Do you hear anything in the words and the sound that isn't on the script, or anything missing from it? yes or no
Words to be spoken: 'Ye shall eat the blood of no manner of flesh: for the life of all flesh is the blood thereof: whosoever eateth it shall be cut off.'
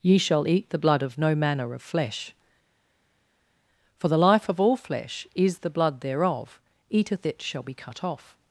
yes